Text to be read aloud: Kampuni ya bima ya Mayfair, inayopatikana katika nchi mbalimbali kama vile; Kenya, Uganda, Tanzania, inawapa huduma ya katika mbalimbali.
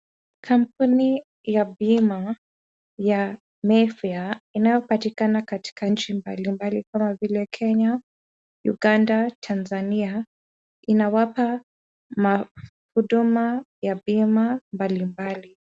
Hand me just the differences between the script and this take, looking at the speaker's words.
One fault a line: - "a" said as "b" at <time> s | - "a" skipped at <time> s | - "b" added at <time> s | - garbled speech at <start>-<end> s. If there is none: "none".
- "katika" said as "bima" at 14.1 s